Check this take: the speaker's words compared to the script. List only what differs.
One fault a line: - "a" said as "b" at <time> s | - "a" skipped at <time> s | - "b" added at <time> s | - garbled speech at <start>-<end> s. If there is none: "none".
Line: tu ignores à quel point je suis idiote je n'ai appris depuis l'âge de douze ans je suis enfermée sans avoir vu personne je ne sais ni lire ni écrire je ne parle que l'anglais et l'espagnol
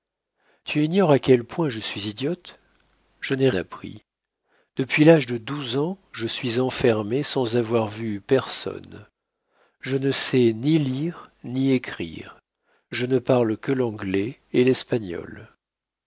none